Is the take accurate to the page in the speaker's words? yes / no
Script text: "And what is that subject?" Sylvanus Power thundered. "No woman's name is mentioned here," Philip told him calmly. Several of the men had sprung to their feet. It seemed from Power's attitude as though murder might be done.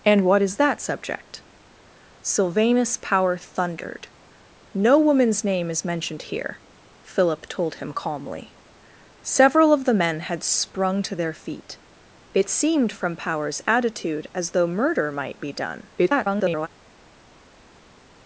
no